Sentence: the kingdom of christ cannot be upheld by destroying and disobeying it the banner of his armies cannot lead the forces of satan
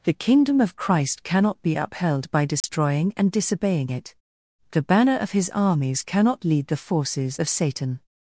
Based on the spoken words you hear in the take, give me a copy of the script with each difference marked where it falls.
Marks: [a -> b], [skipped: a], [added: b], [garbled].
the kingdom of christ cannot be upheld by destroying and disobeying it the banner of his armies cannot lead the forces of satan